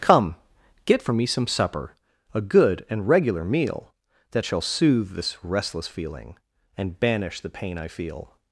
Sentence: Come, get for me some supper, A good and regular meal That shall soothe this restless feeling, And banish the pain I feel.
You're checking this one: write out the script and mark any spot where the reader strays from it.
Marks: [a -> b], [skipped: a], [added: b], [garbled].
Come, get for me some supper, A good and regular meal That shall soothe this restless feeling, And banish the pain I feel.